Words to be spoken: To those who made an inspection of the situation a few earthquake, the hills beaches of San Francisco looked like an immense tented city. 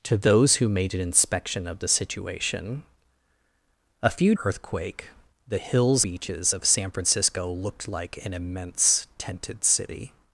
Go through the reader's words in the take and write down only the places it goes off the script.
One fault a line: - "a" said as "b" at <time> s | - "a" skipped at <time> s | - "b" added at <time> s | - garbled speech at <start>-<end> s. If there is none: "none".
none